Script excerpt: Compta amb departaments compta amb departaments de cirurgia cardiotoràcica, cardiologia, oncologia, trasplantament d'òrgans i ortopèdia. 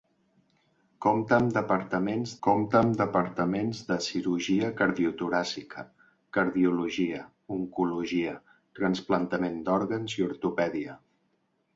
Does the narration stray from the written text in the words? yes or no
no